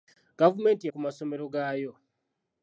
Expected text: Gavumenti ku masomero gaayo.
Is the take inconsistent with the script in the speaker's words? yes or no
no